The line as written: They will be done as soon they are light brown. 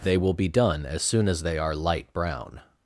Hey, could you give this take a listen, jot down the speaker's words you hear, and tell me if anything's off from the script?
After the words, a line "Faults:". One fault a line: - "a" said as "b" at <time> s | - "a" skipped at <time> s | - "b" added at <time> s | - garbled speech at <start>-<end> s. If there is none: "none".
They will be done as soon as they are light brown.
Faults:
- "as" added at 1.3 s